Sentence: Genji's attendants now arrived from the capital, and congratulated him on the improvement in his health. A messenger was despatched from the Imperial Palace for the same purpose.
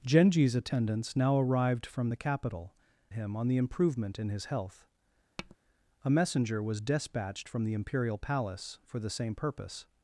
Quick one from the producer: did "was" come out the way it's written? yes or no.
yes